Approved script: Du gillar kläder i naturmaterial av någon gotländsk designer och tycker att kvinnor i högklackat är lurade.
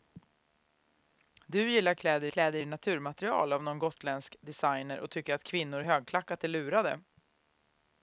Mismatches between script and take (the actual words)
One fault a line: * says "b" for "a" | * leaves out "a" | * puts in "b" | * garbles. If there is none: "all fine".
* puts in "kläder"